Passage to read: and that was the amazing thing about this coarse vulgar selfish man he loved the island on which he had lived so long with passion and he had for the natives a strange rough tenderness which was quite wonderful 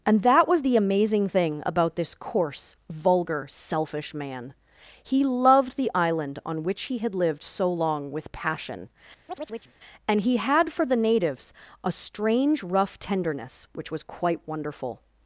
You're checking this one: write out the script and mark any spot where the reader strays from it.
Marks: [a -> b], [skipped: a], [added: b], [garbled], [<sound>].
and that was the amazing thing about this coarse vulgar selfish man he loved the island on which he had lived so long with passion [chirp] and he had for the natives a strange rough tenderness which was quite wonderful